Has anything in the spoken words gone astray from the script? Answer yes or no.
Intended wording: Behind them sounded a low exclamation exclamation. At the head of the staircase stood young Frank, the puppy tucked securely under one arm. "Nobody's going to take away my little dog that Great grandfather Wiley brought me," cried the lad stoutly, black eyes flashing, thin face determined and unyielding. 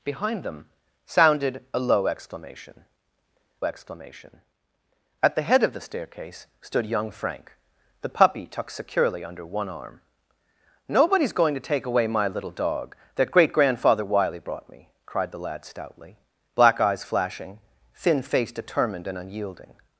no